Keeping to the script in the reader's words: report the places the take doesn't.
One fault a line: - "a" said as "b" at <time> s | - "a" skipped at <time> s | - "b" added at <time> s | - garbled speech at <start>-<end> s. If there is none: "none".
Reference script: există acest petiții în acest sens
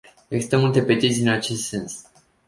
- "acest" said as "multe" at 0.5 s